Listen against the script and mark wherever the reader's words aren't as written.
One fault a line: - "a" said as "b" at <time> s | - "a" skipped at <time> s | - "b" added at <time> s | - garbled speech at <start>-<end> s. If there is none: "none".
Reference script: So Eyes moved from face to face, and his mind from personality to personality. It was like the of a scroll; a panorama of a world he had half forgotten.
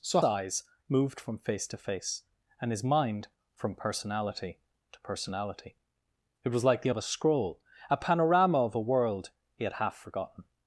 none